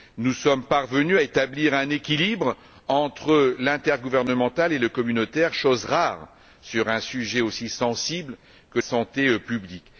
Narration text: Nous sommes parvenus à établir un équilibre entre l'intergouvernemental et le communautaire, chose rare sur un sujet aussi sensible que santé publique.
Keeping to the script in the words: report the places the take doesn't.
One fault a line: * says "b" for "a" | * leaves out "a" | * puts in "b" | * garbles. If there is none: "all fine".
all fine